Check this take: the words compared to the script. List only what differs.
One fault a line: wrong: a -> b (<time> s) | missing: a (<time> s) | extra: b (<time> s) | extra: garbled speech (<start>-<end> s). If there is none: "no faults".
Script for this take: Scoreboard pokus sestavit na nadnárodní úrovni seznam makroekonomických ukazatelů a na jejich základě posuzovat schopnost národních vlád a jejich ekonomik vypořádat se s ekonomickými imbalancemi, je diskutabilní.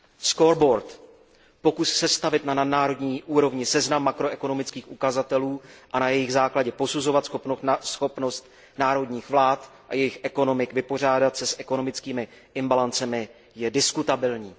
no faults